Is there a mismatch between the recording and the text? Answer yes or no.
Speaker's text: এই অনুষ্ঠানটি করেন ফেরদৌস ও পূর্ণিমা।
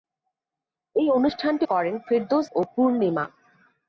no